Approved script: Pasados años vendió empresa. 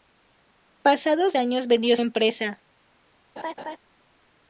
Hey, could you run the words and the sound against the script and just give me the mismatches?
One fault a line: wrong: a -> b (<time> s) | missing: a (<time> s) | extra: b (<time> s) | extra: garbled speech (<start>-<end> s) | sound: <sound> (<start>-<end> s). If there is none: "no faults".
sound: laugh (3.4-3.8 s)